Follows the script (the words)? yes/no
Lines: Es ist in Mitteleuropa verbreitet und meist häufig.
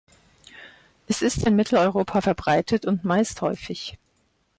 yes